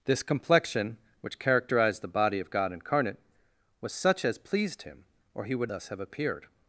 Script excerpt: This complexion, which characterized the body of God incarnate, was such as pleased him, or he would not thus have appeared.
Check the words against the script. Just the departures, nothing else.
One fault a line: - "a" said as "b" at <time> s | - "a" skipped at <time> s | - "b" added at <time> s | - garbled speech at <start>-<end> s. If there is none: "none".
- "not" skipped at 5.7 s